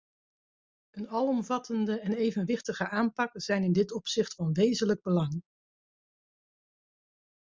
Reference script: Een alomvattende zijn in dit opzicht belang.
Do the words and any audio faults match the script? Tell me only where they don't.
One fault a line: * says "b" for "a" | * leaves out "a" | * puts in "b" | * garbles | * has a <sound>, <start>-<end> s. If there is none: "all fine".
* puts in "en evenwichtige aanpak"
* puts in "van wezenlijk"